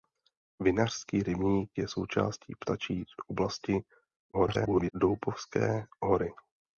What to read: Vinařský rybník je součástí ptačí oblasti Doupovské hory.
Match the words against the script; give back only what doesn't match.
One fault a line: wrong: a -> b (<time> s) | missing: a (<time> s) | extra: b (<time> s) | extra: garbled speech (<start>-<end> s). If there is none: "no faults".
extra: garbled speech (4.3-4.9 s)